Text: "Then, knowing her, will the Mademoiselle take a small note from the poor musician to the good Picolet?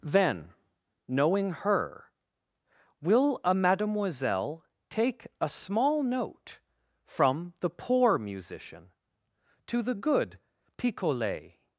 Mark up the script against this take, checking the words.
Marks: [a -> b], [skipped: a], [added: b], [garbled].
"Then, knowing her, will [the -> a] Mademoiselle take a small note from the poor musician to the good Picolet?